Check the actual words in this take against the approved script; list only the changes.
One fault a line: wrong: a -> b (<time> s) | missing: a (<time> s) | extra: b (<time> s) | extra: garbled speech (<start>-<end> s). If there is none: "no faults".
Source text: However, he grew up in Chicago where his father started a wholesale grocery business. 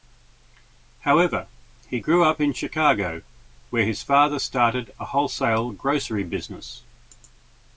no faults